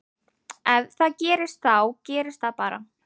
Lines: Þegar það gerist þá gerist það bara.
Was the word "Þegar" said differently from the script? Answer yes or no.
yes